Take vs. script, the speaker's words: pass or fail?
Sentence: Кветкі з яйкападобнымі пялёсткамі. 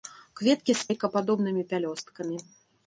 pass